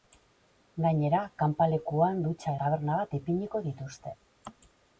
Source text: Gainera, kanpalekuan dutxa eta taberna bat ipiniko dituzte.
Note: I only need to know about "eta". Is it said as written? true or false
false